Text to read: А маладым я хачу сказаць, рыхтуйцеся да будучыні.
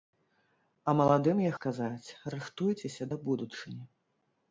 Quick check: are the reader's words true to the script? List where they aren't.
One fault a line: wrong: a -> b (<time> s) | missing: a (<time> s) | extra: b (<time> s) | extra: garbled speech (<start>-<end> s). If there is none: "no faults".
missing: хачу (1.5 s)